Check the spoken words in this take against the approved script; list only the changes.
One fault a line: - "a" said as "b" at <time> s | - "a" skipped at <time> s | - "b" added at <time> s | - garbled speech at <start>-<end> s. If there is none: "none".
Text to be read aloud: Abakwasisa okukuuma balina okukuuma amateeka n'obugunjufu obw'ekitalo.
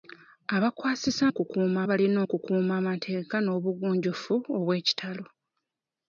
none